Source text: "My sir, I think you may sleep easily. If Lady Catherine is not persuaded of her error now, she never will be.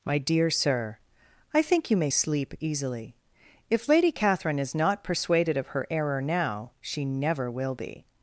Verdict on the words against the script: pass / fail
fail